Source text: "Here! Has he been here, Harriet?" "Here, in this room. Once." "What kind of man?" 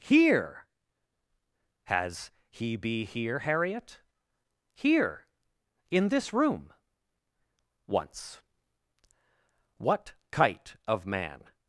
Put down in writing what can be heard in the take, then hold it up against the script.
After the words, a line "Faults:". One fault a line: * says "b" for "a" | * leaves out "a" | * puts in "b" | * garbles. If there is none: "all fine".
"Here! Has he be here, Harriet?" "Here, in this room. Once." "What kite of man?"
Faults:
* says "be" for "been"
* says "kite" for "kind"